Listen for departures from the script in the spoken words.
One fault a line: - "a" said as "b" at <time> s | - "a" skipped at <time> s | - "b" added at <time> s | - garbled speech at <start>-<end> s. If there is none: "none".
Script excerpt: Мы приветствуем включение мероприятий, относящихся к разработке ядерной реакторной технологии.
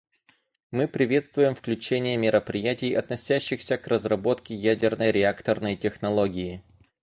none